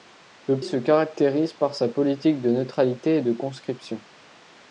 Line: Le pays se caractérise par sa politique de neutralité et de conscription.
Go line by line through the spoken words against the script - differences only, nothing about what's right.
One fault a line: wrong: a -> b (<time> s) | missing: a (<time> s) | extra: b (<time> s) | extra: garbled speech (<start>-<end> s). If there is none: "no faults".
missing: pays (0.6 s)